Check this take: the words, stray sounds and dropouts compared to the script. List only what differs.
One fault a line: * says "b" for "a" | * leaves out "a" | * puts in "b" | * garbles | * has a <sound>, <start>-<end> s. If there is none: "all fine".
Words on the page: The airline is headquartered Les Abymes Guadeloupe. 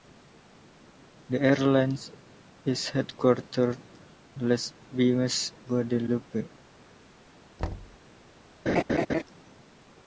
* has a thud, 7.6-8.0 s
* has a laugh, 8.7-9.2 s